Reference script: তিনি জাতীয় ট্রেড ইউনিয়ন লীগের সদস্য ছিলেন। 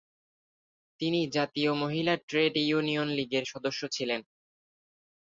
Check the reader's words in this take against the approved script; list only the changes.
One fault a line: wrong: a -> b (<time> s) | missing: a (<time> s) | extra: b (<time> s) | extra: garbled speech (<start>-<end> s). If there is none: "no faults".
extra: মহিলা (1.7 s)